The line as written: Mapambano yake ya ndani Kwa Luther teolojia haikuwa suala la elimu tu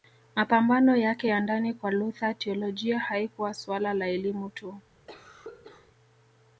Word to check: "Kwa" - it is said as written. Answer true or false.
true